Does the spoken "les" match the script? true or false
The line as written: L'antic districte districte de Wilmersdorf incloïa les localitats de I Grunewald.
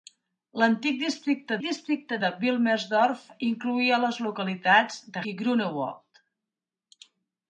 true